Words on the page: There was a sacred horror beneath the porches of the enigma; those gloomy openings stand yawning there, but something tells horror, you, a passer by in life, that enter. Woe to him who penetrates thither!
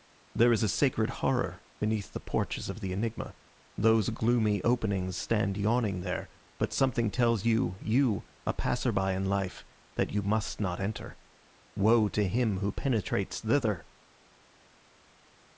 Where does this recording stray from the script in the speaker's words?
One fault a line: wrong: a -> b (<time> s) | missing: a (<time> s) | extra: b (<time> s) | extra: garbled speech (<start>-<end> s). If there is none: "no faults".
wrong: was -> is (0.5 s)
wrong: horror -> you (7.5 s)
extra: you must not (10.1 s)